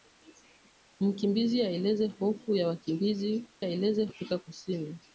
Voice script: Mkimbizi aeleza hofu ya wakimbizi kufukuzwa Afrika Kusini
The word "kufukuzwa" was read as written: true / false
false